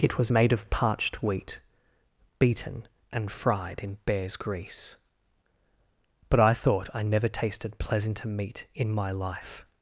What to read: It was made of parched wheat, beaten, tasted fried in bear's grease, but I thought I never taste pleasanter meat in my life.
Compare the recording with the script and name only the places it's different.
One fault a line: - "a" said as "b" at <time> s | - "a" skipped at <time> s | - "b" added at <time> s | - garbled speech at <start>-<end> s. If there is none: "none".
- "tasted" said as "and" at 3.1 s
- "taste" said as "tasted" at 7.3 s